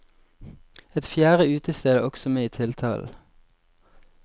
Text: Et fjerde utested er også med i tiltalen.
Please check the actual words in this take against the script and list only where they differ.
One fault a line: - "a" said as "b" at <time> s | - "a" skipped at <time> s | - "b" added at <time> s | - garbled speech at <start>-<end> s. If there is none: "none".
none